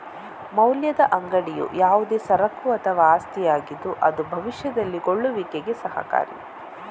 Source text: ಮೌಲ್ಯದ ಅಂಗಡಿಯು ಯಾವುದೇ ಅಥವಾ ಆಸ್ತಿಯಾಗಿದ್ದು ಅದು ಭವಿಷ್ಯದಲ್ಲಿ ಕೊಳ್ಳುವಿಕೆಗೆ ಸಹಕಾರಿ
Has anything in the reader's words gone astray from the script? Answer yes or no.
yes